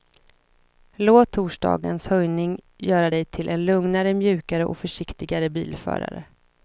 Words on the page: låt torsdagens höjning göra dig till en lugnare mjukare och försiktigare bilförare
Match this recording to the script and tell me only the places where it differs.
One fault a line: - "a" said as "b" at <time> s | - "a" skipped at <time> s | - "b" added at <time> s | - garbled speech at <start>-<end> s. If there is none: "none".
none